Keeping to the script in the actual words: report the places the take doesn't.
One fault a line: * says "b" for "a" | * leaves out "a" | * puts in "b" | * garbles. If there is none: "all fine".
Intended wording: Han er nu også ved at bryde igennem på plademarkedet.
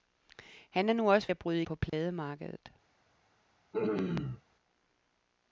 * leaves out "ved"
* leaves out "igennem"